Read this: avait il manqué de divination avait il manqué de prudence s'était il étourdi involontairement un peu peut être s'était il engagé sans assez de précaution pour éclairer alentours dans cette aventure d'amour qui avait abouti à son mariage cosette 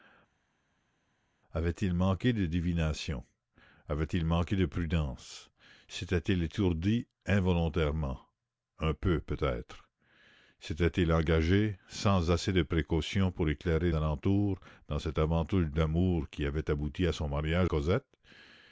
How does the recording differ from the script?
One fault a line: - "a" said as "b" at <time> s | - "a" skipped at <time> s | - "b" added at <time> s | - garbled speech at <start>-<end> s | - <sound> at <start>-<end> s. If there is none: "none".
none